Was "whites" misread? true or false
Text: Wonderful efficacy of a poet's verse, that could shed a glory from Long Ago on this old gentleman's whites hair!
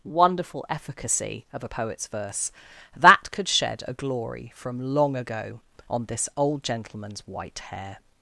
true